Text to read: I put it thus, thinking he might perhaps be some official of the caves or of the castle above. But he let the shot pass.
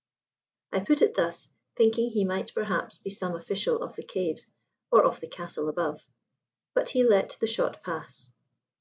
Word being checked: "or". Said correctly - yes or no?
yes